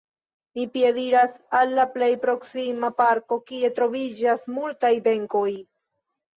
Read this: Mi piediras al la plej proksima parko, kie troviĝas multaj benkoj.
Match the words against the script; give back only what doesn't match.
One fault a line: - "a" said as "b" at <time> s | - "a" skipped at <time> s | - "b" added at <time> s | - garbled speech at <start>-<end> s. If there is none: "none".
none